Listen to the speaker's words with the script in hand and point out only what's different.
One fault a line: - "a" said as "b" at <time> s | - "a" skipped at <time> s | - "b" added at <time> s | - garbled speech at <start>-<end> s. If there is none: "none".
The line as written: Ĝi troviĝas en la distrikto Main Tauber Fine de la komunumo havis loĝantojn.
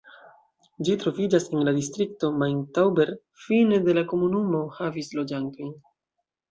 none